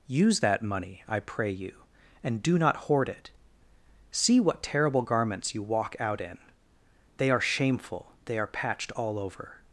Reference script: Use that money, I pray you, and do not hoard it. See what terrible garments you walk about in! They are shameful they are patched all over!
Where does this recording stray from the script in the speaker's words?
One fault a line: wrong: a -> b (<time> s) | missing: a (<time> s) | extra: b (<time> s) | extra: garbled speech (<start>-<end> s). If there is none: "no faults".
wrong: about -> out (6.0 s)